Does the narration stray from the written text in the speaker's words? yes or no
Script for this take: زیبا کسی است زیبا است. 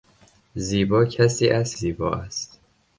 no